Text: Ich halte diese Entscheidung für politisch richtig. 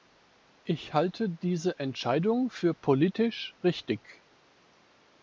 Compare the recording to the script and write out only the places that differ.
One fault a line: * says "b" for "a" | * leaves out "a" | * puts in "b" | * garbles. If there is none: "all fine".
all fine